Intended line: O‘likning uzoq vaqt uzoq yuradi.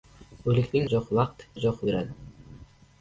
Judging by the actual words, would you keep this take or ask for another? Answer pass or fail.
pass